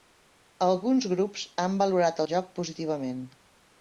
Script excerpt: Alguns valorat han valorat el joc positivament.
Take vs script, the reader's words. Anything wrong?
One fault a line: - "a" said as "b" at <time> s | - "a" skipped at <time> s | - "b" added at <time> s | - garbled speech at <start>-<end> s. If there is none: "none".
- "valorat" said as "grups" at 1.1 s